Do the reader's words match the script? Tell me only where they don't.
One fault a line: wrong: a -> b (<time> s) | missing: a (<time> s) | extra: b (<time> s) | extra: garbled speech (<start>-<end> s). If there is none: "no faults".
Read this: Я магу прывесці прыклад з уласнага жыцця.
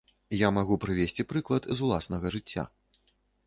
no faults